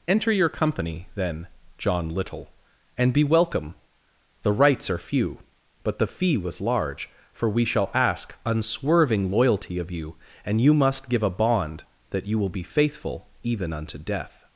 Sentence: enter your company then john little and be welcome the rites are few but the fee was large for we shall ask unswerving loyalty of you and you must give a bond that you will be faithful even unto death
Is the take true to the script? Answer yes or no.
yes